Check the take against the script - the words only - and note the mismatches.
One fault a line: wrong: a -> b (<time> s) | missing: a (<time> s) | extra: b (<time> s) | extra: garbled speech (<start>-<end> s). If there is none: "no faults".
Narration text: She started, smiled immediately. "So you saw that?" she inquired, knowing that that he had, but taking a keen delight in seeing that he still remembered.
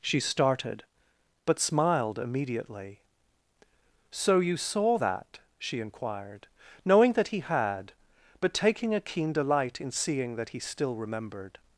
extra: but (1.4 s)
missing: that (7.3 s)